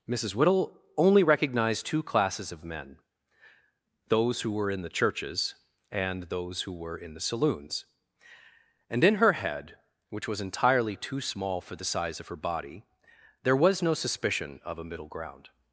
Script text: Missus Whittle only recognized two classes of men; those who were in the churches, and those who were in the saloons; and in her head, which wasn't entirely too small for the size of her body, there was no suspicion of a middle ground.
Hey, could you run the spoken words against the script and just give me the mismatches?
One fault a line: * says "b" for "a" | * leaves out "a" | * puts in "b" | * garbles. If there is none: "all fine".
* says "was" for "wasn't"